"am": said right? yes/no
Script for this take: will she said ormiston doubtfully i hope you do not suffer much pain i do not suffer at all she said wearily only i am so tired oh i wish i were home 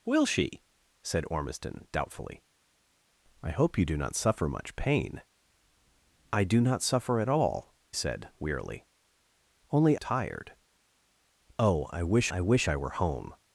no